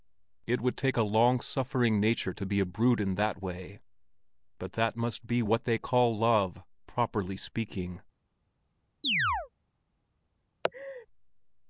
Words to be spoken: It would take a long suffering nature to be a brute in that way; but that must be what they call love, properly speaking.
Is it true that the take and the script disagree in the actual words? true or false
false